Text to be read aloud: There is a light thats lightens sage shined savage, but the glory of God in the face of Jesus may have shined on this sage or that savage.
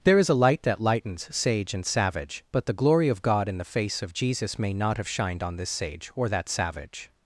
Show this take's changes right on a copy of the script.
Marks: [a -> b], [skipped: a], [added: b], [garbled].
There is a light [thats -> that] lightens sage [shined -> and] savage, but the glory of God in the face of Jesus may [added: not] have shined on this sage or that savage.